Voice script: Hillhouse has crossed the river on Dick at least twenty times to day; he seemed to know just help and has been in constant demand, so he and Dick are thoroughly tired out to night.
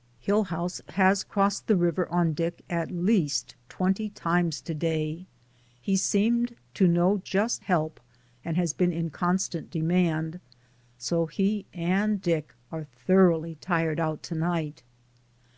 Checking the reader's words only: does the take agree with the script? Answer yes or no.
yes